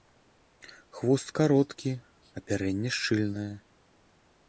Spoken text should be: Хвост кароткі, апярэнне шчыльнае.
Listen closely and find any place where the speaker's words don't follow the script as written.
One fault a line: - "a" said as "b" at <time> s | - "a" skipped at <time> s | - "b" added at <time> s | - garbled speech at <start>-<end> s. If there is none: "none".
none